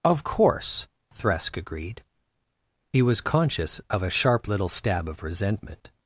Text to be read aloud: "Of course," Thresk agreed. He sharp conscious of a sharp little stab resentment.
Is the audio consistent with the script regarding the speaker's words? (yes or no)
no